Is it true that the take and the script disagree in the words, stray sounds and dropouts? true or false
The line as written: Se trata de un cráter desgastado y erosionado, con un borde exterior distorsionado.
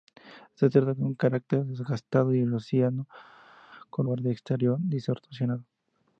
true